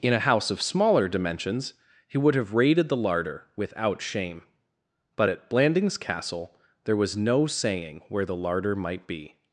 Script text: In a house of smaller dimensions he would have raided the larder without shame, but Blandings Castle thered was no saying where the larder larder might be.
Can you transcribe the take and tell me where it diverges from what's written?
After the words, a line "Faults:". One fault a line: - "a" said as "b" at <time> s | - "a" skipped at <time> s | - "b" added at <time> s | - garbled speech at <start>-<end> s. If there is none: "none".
In a house of smaller dimensions he would have raided the larder without shame, but at Blandings Castle there was no saying where the larder might be.
Faults:
- "at" added at 5.3 s
- "thered" said as "there" at 6.8 s
- "larder" skipped at 8.7 s